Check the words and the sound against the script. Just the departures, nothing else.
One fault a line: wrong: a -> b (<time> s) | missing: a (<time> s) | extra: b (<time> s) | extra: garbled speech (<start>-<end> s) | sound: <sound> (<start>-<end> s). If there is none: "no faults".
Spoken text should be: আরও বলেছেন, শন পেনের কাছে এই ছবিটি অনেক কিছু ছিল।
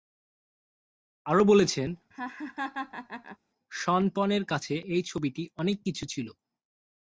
sound: laugh (2.1-3.4 s)